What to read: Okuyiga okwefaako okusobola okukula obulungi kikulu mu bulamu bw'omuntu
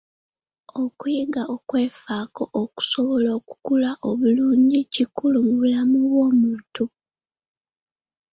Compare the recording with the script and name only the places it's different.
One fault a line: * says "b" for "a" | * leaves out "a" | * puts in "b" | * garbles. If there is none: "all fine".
all fine